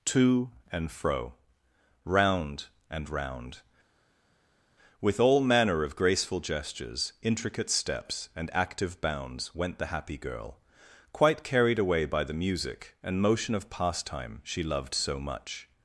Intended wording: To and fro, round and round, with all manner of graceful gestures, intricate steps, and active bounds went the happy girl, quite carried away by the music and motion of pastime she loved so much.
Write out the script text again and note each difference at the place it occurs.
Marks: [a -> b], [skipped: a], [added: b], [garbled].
To and fro, round and round, with all manner of graceful gestures, intricate steps, and active bounds went the happy girl, quite carried away by the music and motion of pastime she loved so much.